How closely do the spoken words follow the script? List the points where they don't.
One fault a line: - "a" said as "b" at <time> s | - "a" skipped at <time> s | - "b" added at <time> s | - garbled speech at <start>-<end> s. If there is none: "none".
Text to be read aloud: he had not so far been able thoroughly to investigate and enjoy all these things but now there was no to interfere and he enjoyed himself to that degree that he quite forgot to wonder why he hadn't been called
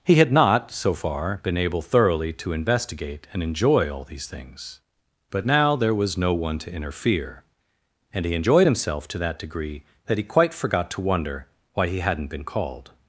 - "one" added at 6.3 s